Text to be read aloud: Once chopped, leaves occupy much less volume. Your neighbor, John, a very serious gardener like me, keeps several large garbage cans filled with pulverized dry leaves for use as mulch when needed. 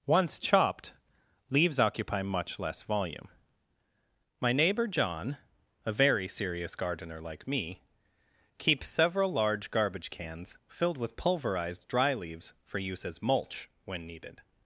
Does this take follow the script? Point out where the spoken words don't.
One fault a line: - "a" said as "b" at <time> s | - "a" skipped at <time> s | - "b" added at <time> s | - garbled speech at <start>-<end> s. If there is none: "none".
- "Your" said as "My" at 4.4 s